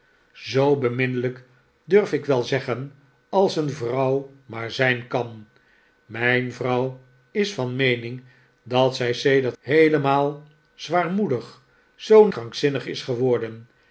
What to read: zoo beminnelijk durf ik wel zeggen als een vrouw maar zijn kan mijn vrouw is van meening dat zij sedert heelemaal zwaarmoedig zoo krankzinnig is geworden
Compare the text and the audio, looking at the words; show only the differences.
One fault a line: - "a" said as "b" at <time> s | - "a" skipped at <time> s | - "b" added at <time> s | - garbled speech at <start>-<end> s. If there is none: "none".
none